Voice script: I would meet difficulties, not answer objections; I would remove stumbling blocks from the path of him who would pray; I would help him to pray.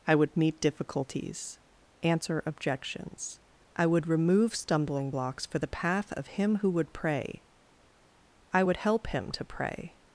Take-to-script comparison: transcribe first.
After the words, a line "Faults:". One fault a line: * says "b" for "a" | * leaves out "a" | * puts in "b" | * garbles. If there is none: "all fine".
I would meet difficulties, answer objections; I would remove stumbling blocks for the path of him who would pray; I would help him to pray.
Faults:
* leaves out "not"
* says "for" for "from"